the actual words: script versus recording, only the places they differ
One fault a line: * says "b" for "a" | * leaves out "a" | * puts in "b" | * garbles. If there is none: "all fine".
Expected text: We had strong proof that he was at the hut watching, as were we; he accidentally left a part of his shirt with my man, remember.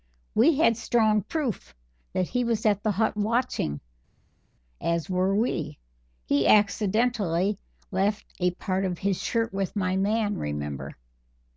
all fine